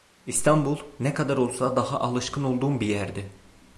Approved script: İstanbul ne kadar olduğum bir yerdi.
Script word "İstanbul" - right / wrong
right